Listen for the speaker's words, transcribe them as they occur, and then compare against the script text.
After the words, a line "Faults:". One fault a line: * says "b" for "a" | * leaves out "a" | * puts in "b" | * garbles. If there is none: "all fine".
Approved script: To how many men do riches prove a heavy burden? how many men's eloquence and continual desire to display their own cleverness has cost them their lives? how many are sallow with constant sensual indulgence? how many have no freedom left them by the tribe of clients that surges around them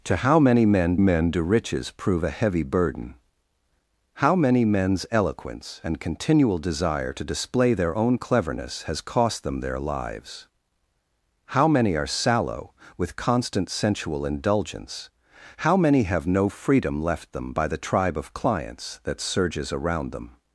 To how many men men do riches prove a heavy burden? how many men's eloquence and continual desire to display their own cleverness has cost them their lives? how many are sallow with constant sensual indulgence? how many have no freedom left them by the tribe of clients that surges around them
Faults:
* puts in "men"